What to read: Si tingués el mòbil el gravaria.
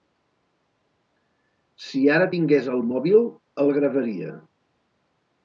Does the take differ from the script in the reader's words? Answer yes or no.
yes